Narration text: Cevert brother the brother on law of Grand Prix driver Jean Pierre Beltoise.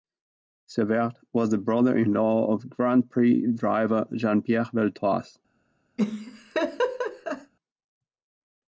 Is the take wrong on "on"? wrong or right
wrong